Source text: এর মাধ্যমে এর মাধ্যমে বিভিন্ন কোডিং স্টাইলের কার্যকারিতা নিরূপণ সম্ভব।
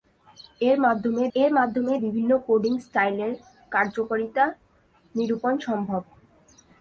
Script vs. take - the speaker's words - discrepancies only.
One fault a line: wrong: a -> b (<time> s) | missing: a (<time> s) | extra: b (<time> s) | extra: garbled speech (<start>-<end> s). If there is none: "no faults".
no faults